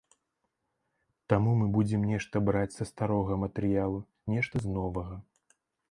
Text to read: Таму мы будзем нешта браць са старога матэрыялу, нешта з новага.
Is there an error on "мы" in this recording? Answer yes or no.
no